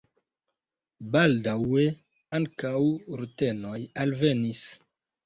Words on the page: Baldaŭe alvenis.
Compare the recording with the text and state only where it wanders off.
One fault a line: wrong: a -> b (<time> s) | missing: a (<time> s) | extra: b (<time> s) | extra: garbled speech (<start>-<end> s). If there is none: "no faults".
extra: ankaŭ rutenoj (2.4 s)